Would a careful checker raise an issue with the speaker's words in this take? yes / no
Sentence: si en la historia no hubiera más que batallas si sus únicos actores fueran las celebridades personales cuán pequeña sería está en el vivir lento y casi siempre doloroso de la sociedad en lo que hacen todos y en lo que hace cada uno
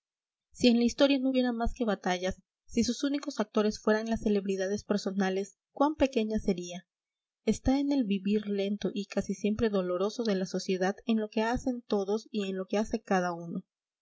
no